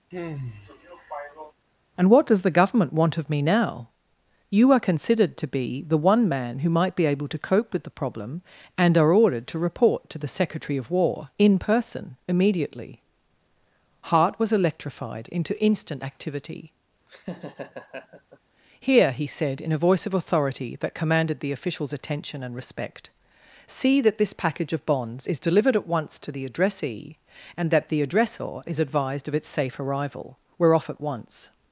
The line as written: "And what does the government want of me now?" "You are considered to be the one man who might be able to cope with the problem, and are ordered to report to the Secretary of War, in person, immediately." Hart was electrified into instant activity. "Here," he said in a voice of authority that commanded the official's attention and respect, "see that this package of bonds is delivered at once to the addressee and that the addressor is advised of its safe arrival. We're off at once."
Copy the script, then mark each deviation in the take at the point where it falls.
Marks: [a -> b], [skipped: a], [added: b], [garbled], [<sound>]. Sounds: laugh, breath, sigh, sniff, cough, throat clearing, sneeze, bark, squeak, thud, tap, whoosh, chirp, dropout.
[sigh] "And what does the government want of me now?" "You are considered to be the one man who might be able to cope with the problem, and are ordered to report to the Secretary of War, in person, immediately." Hart was electrified into instant activity. [laugh] "Here," he said in a voice of authority that commanded the official's attention and respect, "see that this package of bonds is delivered at once to the addressee and that the addressor is advised of its safe arrival. We're off at once."